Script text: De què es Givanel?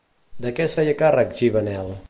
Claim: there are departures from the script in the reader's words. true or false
true